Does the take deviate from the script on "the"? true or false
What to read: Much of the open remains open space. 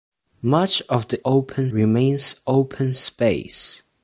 false